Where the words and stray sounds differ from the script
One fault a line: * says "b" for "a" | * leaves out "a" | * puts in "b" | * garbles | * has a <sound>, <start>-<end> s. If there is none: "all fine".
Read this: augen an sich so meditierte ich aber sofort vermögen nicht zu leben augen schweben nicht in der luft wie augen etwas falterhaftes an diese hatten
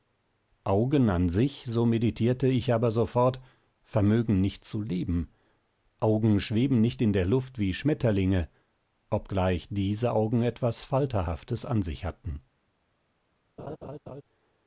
* puts in "schmetterlinge obgleich diese"
* says "sich" for "diese"
* has a laugh, 13.6-14.2 s